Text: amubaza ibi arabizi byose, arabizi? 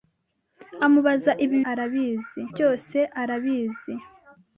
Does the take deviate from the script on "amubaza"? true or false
false